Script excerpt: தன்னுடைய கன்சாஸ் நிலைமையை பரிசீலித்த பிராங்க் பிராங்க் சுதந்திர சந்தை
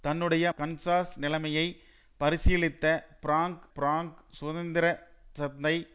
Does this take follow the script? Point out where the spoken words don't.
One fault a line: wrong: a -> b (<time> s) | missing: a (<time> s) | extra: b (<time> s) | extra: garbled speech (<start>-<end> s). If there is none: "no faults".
no faults